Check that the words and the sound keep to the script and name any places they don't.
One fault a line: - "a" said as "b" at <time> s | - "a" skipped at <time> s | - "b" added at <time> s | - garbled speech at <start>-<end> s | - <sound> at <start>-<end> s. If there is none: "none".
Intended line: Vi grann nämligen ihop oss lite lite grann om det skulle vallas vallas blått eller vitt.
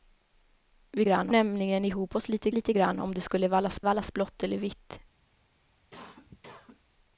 - cough at 5.9-6.8 s